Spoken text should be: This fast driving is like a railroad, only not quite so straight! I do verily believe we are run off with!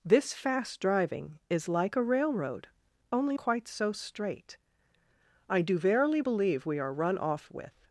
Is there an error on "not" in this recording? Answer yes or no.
yes